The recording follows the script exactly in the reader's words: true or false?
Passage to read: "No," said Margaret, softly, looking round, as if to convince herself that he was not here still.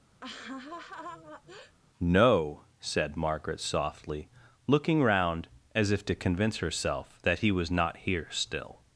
true